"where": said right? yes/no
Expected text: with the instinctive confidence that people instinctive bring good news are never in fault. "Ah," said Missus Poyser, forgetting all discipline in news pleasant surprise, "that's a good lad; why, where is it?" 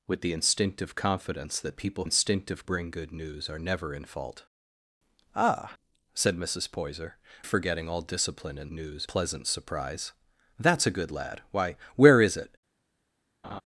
yes